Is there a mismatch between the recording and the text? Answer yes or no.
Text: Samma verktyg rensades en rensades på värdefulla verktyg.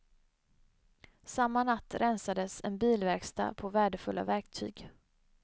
yes